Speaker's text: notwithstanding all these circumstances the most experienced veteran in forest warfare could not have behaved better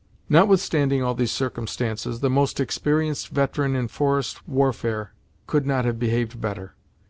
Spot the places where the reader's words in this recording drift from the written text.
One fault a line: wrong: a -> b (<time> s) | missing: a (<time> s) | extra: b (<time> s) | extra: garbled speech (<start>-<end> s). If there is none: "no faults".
no faults